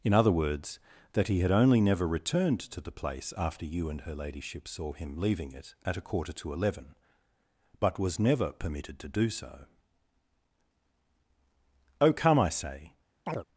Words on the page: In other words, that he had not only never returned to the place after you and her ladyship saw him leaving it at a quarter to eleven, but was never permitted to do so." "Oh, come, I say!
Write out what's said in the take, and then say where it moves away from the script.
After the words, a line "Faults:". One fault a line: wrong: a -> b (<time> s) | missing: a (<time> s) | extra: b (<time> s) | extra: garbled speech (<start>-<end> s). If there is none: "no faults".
In other words, that he had only never returned to the place after you and her ladyship saw him leaving it at a quarter to eleven, but was never permitted to do so." "Oh, come, I say!
Faults:
missing: not (1.5 s)